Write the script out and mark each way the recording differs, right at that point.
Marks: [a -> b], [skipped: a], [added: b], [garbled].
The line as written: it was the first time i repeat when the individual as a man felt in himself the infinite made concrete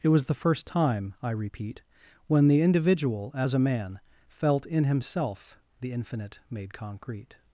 it was the first time i repeat when the individual as a man felt in himself the infinite made concrete